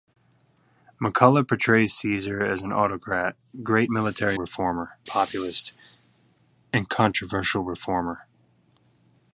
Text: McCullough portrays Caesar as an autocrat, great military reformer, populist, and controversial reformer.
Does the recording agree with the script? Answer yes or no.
yes